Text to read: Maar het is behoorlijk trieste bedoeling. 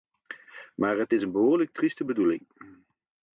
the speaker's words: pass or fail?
fail